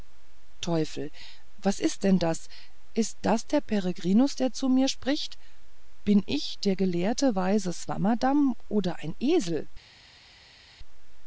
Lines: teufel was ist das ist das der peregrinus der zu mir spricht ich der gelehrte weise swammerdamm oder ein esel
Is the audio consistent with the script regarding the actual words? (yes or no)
no